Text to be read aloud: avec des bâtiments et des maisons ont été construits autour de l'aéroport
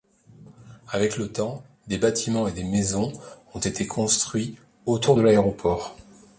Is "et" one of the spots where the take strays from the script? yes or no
no